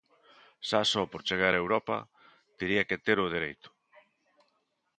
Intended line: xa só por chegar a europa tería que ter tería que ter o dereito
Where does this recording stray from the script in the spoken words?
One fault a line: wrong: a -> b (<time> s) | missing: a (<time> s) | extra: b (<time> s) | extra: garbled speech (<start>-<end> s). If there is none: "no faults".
missing: tería que ter (3.2 s)